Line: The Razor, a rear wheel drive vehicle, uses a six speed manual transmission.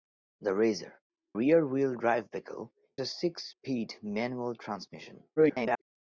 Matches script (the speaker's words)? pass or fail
fail